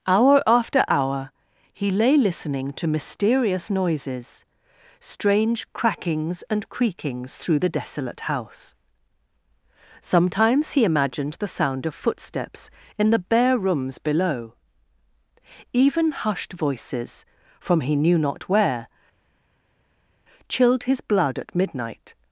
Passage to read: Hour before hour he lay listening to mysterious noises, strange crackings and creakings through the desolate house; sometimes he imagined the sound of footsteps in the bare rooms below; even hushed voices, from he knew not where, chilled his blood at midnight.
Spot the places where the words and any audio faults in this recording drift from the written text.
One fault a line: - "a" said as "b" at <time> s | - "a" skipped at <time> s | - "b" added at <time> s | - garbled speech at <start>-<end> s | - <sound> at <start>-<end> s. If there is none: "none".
- "before" said as "after" at 0.5 s